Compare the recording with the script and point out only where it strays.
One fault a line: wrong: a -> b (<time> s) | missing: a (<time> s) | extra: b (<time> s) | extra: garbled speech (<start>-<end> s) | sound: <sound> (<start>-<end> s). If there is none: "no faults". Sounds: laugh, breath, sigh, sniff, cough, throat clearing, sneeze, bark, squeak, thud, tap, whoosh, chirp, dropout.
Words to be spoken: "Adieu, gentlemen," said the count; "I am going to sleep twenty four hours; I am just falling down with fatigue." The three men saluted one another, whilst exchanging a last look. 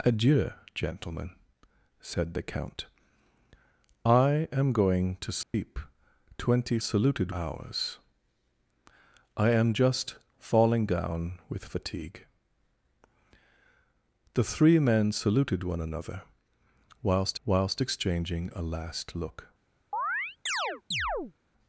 sound: dropout (5.4-5.5 s)
wrong: four -> saluted (6.8 s)
extra: whilst (17.4 s)
sound: chirp (19.9-21.3 s)